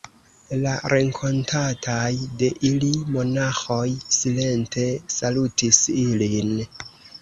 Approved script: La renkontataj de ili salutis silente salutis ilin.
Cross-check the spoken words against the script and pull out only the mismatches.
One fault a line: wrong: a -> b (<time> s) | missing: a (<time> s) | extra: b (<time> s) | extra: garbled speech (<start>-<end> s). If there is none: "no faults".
wrong: salutis -> monaĥoj (3.2 s)